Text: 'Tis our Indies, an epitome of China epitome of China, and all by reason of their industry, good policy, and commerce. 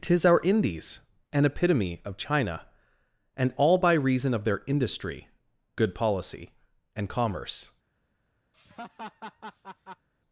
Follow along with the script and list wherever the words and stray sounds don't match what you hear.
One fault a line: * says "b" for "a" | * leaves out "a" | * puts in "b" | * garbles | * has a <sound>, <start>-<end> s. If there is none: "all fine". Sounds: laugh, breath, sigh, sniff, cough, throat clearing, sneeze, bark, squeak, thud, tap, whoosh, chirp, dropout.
* leaves out "epitome of China"
* has a laugh, 8.5-10.1 s